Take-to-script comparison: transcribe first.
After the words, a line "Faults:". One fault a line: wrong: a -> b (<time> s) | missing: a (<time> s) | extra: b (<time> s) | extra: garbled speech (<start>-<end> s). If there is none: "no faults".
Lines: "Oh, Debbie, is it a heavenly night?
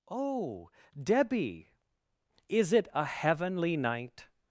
"Oh, Debbie, is it a heavenly night?
Faults:
no faults